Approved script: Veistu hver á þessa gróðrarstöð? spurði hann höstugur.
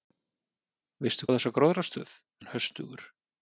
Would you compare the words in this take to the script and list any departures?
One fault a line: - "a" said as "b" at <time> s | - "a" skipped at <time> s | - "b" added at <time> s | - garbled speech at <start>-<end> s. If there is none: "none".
- "hver" skipped at 1.3 s
- "spurði" skipped at 2.2 s